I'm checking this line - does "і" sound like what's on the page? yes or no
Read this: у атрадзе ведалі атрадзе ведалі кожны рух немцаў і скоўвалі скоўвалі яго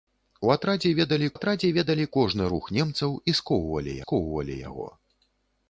yes